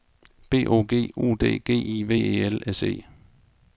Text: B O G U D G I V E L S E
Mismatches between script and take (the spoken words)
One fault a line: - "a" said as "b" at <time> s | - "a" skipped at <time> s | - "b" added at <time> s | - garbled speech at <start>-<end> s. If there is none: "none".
none